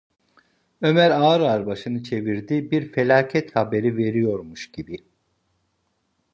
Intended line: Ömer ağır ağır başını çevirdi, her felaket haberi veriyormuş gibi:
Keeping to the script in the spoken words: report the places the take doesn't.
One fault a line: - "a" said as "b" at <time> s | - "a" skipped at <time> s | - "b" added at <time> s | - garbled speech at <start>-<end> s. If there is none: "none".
- "her" said as "bir" at 2.7 s